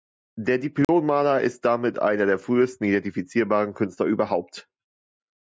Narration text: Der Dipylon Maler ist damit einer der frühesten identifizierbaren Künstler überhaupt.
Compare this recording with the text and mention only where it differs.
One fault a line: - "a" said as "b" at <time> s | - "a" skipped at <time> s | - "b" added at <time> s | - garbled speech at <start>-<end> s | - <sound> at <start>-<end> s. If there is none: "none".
- dropout at 0.8-0.9 s